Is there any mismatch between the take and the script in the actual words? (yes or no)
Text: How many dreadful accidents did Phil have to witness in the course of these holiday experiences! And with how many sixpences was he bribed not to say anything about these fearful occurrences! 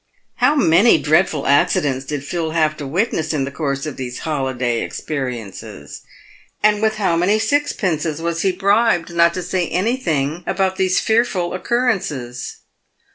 no